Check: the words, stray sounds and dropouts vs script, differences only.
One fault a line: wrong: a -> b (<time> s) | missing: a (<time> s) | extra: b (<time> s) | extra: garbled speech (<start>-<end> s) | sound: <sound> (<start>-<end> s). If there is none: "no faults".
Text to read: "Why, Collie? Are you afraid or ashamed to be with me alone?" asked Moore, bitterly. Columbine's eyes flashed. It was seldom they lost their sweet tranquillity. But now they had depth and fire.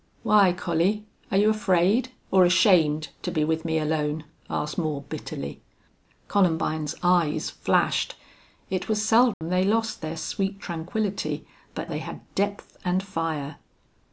sound: dropout (9.3-9.4 s)
missing: now (11.9 s)